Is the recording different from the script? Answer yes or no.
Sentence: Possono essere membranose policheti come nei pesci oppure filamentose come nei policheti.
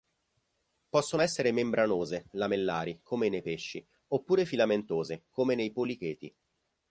yes